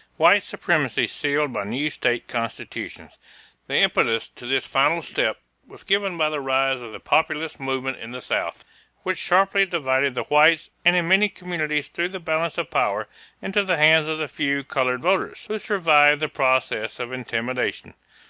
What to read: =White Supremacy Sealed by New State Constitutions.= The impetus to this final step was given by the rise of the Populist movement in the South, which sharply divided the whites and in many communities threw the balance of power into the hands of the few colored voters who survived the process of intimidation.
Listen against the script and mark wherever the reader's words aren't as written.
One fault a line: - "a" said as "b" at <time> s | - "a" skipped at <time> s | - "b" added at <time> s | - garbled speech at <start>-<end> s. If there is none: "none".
none